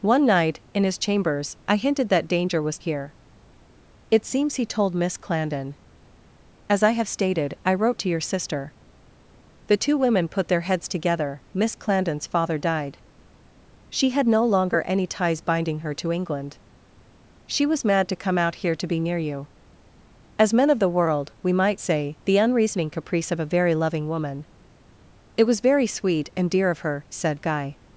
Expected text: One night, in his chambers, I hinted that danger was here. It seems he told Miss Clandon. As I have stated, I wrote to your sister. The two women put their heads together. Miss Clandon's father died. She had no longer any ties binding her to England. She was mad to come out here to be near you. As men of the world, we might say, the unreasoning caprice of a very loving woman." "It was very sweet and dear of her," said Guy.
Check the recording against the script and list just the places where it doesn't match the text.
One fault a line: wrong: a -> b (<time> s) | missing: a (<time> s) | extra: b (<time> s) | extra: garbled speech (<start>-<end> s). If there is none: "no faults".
no faults